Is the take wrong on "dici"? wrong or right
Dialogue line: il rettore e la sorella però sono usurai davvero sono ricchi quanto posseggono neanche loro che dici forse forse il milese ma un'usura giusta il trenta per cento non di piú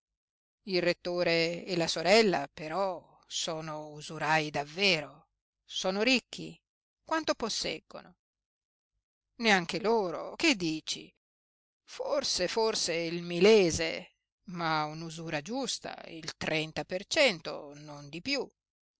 right